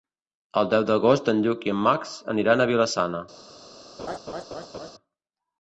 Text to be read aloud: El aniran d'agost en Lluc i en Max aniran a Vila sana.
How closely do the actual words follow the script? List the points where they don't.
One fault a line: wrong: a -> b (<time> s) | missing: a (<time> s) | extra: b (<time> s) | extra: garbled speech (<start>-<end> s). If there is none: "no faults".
wrong: aniran -> deu (0.7 s)